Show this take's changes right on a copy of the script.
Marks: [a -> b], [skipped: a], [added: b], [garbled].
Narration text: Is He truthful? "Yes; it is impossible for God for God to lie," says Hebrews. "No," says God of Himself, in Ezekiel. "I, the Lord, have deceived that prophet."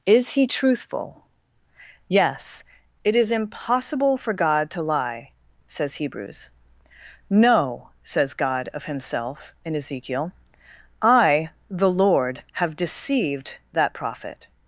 Is He truthful? "Yes; it is impossible for God [skipped: for God] to lie," says Hebrews. "No," says God of Himself, in Ezekiel. "I, the Lord, have deceived that prophet."